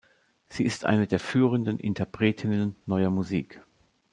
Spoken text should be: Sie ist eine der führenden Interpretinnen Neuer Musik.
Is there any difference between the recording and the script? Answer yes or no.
no